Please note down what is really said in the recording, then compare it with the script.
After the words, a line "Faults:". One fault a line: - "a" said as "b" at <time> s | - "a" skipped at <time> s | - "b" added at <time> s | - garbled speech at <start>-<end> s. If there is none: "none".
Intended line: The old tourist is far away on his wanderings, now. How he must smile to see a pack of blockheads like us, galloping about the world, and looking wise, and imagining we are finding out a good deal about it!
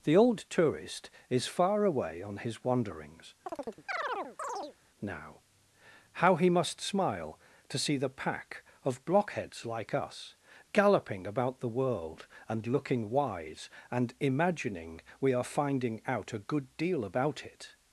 The old tourist is far away on his wanderings, now. How he must smile to see the pack of blockheads like us, galloping about the world, and looking wise, and imagining we are finding out a good deal about it!
Faults:
- "a" said as "the" at 8.0 s